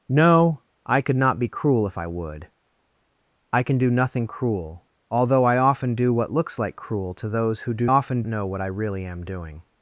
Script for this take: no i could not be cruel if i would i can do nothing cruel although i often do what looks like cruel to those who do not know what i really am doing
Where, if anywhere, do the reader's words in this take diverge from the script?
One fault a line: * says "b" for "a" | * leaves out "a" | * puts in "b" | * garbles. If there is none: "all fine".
* says "often" for "not"